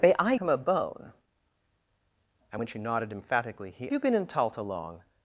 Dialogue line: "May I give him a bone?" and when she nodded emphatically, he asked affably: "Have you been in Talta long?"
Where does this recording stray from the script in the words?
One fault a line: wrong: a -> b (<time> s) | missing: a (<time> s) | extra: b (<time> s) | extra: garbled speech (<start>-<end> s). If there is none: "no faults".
missing: give (0.3 s)
missing: asked affably Have (3.9 s)